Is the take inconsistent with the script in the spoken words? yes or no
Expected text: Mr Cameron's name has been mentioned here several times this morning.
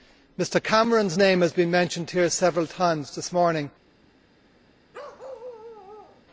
no